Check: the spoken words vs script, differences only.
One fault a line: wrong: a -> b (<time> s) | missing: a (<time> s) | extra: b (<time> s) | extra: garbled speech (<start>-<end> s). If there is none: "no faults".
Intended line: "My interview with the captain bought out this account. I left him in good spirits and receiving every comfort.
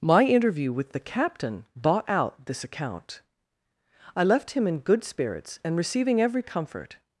no faults